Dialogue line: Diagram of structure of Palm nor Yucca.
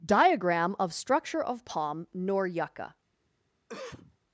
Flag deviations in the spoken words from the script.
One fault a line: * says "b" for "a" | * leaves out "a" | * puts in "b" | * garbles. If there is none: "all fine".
all fine